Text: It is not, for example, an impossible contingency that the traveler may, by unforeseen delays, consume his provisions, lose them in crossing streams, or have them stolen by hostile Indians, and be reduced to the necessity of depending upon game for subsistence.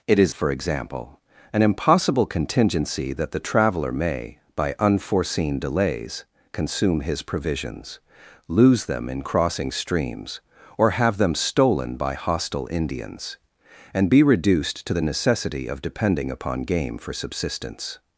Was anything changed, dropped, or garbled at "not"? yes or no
yes